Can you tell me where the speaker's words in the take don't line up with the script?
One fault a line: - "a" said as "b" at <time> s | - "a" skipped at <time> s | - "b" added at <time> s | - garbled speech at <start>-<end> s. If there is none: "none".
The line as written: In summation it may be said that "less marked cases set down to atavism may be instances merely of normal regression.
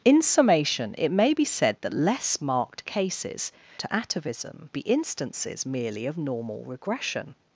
- "set down" skipped at 3.5 s
- "may" skipped at 4.7 s